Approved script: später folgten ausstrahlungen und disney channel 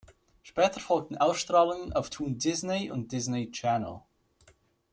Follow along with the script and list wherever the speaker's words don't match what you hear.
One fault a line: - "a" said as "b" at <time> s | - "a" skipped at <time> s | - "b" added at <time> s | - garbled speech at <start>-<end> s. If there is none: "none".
- "auf toon disney" added at 1.9 s